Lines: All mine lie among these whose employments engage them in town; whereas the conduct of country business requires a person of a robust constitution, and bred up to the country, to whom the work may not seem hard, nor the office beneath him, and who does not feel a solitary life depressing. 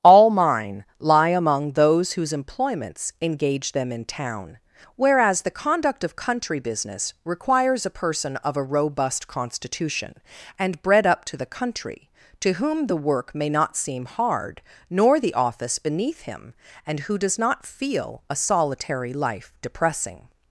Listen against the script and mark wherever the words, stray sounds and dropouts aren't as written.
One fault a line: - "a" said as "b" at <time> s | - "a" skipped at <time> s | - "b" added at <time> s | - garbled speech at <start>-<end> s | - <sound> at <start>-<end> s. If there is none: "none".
- "these" said as "those" at 1.7 s